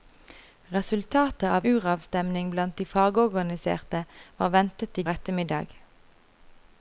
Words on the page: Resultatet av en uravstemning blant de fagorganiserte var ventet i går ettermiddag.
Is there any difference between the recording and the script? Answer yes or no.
yes